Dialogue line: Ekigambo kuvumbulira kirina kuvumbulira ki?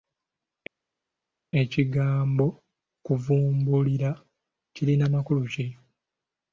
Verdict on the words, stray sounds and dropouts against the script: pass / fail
fail